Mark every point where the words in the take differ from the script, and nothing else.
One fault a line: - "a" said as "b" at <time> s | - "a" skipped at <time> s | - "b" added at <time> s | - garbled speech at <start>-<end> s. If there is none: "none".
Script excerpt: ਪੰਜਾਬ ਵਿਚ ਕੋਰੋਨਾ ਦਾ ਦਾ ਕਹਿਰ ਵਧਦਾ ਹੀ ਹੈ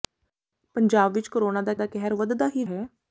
none